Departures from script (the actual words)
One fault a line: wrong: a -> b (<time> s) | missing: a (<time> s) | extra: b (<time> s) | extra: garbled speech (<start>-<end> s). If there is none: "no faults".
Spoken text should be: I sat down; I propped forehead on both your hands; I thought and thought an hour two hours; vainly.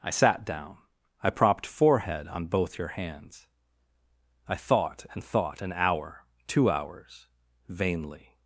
no faults